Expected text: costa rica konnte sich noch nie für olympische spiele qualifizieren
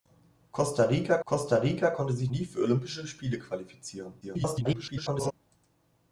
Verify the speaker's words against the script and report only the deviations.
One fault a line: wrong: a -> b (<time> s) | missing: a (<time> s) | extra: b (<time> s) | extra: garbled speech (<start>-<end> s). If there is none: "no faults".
extra: costa rica (1.2 s)
missing: noch (2.3 s)
extra: garbled speech (4.2-5.3 s)